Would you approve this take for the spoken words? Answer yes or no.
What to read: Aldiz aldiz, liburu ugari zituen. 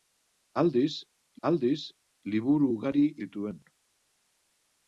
yes